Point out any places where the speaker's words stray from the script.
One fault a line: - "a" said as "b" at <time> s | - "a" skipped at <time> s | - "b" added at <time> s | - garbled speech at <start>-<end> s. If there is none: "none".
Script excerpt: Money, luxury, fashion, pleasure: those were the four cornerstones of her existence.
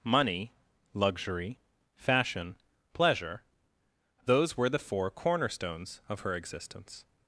none